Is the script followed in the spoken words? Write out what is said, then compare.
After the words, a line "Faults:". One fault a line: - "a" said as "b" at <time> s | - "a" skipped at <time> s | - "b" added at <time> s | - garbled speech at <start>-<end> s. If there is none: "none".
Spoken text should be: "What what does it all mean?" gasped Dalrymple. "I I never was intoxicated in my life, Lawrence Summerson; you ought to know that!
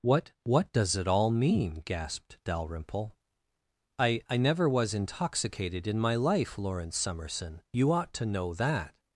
"What what does it all mean?" gasped Dalrymple. "I I never was intoxicated in my life, Lawrence Summerson; you ought to know that!
Faults:
none